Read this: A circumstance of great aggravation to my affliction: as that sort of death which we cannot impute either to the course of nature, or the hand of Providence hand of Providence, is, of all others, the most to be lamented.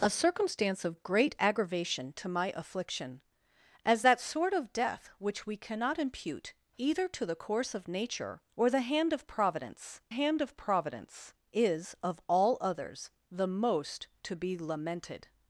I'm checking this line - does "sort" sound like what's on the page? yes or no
yes